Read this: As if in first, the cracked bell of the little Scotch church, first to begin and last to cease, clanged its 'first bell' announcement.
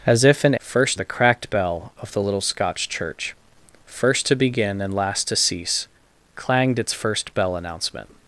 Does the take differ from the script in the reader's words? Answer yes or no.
no